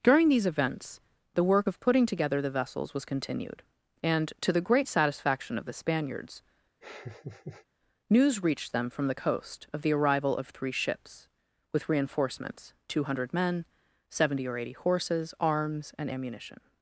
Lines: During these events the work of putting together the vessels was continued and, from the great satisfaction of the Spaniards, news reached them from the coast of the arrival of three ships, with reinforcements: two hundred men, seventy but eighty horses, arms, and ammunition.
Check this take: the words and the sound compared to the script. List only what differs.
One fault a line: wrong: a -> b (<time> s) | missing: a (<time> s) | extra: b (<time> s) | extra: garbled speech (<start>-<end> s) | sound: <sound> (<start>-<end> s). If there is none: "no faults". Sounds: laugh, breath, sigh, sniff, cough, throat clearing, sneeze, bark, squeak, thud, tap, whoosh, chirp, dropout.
wrong: from -> to (4.4 s)
sound: laugh (6.8-7.7 s)
wrong: but -> or (14.5 s)